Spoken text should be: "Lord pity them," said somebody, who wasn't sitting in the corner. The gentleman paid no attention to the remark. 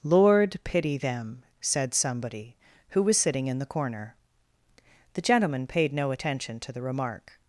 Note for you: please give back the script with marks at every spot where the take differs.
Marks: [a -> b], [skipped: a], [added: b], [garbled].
"Lord pity them," said somebody, who [wasn't -> was] sitting in the corner. The gentleman paid no attention to the remark.